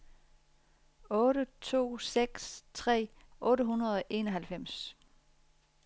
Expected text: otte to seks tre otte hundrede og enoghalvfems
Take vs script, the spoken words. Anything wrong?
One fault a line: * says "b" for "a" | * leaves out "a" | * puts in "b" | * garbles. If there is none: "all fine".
all fine